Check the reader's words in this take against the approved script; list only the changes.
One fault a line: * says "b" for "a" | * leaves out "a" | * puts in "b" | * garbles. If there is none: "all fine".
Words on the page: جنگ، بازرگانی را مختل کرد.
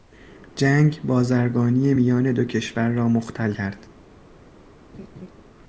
* puts in "میان دو کشور"